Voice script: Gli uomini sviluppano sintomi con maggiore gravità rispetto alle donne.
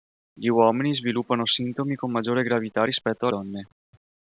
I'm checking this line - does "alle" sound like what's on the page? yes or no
no